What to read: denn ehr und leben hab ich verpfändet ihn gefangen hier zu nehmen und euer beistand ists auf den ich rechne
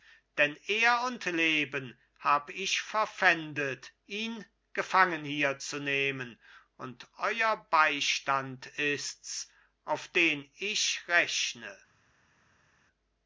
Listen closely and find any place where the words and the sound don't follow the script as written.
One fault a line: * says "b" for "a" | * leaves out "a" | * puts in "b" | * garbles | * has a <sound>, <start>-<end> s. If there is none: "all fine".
all fine